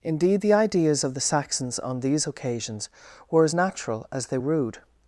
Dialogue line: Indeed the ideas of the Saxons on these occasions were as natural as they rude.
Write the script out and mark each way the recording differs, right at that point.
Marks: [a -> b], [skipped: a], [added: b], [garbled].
Indeed the ideas of the Saxons on these occasions were as natural as they rude.